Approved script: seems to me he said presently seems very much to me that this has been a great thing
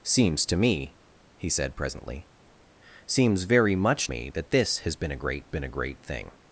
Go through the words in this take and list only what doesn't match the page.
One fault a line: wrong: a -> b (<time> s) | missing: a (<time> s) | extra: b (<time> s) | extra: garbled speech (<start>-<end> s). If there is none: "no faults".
missing: to (4.1 s)
extra: been a great (5.5 s)